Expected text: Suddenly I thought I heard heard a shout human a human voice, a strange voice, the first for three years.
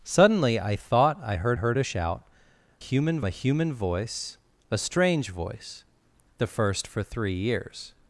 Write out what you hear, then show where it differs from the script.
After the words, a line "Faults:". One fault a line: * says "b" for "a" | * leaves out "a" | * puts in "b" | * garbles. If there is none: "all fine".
Suddenly I thought I heard heard a shout human a human voice, a strange voice, the first for three years.
Faults:
all fine